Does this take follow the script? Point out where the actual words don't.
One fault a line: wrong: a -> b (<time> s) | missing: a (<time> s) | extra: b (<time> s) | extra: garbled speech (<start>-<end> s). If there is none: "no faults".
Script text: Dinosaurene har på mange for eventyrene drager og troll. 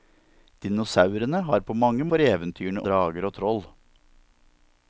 no faults